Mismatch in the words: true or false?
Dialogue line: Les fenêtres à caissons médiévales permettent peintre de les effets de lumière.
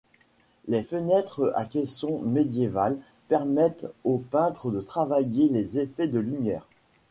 true